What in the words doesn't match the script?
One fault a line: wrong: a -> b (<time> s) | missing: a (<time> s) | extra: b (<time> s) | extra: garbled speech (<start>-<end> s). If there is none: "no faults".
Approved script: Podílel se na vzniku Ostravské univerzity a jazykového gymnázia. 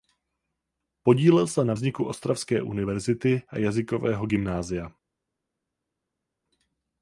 no faults